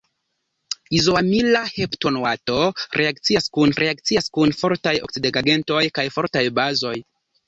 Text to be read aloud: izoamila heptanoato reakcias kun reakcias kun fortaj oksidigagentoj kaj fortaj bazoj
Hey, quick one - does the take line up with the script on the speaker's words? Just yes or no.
yes